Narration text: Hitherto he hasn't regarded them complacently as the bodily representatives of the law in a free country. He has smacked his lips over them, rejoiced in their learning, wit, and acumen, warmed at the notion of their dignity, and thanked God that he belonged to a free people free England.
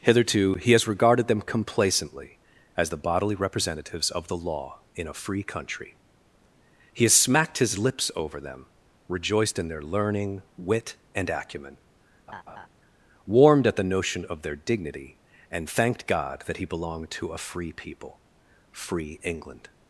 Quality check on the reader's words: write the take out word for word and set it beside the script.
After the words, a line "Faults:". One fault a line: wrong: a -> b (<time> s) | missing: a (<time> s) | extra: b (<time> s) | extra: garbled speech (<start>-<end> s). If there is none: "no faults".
Hitherto he has regarded them complacently as the bodily representatives of the law in a free country. He has smacked his lips over them, rejoiced in their learning, wit, and acumen, warmed at the notion of their dignity, and thanked God that he belonged to a free people free England.
Faults:
wrong: hasn't -> has (0.7 s)